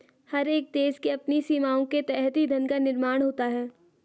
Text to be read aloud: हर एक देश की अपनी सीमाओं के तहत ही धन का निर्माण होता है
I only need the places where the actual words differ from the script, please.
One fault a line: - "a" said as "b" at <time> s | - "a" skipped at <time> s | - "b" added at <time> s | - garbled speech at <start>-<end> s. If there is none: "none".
none